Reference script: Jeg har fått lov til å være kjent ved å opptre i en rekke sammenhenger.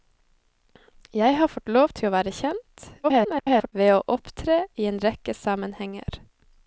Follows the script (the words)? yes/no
no